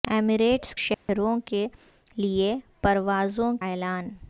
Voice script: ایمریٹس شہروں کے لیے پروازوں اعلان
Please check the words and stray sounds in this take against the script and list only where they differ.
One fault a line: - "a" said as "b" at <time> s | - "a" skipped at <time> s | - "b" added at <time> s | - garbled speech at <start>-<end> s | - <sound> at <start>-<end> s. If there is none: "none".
- dropout at 0.9-1.1 s